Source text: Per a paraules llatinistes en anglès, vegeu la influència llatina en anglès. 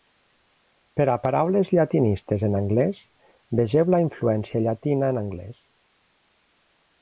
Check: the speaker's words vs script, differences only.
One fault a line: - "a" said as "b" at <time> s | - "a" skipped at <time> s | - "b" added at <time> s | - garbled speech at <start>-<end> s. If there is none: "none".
none